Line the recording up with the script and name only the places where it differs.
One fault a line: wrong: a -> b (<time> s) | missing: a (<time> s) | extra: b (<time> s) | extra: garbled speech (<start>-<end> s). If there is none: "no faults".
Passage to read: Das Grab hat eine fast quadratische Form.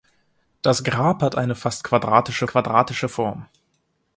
extra: quadratische (2.5 s)